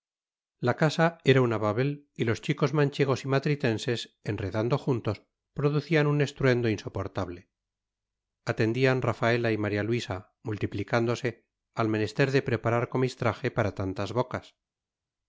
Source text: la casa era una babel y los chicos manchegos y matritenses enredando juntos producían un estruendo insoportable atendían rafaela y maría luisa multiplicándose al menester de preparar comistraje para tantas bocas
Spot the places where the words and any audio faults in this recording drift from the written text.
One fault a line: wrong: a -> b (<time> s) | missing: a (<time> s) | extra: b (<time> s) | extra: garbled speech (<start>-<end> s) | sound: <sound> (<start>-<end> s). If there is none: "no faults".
no faults